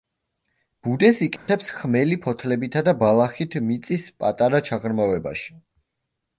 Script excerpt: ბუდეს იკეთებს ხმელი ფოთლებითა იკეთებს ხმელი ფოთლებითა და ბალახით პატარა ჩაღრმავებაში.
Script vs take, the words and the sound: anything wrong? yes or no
yes